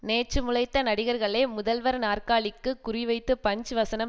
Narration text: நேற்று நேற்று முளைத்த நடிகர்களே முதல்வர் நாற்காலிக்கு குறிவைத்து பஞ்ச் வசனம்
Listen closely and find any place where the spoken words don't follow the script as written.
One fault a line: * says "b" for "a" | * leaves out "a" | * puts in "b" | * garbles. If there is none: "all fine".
* leaves out "நேற்று"